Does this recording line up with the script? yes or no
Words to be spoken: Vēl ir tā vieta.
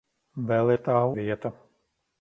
yes